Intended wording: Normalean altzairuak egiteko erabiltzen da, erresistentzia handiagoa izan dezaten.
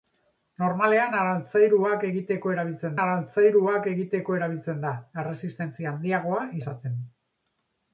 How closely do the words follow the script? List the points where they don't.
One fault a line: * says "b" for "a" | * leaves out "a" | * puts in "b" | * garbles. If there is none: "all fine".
* puts in "altzairuak egiteko erabiltzen"
* leaves out "izan"